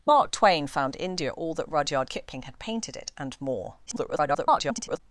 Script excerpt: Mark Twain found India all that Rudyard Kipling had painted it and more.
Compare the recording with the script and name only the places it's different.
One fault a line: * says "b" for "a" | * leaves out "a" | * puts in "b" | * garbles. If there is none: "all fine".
* garbles